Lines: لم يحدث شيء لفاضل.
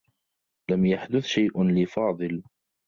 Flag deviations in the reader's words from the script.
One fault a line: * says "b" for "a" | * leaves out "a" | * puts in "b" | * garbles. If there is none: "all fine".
all fine